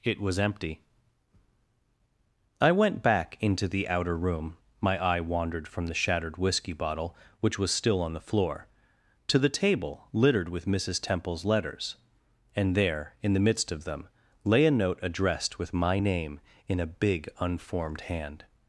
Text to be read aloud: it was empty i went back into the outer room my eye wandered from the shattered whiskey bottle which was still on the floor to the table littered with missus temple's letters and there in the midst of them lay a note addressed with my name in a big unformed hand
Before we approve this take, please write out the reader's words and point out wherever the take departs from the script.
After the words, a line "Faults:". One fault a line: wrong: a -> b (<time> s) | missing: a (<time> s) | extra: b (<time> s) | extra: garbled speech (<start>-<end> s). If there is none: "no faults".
it was empty i went back into the outer room my eye wandered from the shattered whiskey bottle which was still on the floor to the table littered with missus temple's letters and there in the midst of them lay a note addressed with my name in a big unformed hand
Faults:
no faults